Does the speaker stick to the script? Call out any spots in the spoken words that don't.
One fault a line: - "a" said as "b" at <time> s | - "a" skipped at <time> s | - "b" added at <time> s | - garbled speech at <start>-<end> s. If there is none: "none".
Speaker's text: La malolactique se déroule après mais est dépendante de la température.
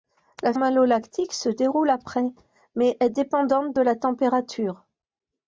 none